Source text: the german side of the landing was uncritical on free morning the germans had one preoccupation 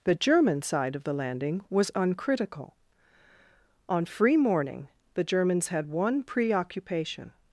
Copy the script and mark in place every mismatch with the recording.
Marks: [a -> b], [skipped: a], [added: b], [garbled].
the german side of the landing was uncritical on free morning the germans had one preoccupation